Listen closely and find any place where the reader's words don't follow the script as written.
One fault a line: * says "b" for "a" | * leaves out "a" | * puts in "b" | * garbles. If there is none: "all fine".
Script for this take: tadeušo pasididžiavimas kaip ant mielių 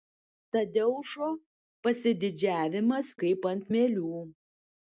all fine